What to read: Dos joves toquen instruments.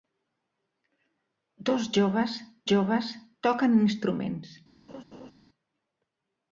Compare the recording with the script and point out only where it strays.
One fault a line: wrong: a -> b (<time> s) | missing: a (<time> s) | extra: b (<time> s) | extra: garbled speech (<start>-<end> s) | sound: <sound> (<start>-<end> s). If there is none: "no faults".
extra: joves (2.7 s)
sound: laugh (4.9-5.3 s)